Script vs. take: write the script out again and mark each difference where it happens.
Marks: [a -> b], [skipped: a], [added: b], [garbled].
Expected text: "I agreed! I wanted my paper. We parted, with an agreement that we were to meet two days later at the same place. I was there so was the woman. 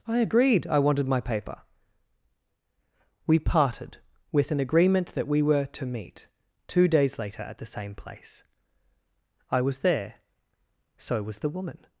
"I agreed! I wanted my paper. We parted, with an agreement that we were to meet two days later at the same place. I was there so was the woman.